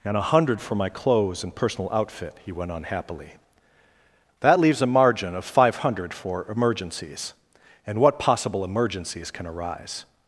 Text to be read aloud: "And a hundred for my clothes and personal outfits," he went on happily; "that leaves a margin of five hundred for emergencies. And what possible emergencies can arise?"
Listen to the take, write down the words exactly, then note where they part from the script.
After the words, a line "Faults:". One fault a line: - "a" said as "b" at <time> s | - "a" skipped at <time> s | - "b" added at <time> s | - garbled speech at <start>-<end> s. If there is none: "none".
"And a hundred for my clothes and personal outfit," he went on happily; "that leaves a margin of five hundred for emergencies. And what possible emergencies can arise?"
Faults:
- "outfits" said as "outfit" at 1.9 s